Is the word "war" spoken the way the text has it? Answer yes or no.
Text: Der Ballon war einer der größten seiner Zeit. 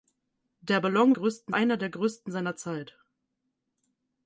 no